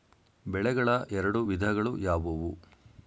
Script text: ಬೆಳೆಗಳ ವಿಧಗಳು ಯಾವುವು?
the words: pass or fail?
fail